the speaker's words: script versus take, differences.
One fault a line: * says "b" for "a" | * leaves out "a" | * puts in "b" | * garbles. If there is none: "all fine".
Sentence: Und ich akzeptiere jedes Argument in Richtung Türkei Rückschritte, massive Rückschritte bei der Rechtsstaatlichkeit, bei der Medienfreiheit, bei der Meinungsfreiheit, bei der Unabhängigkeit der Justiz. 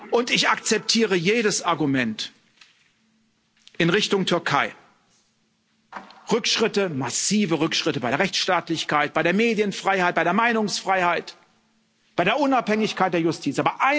all fine